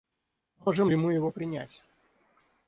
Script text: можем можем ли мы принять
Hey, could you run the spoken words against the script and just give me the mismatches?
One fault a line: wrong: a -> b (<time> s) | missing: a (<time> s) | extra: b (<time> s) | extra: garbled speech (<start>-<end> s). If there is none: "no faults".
missing: можем (0.9 s)
extra: его (1.1 s)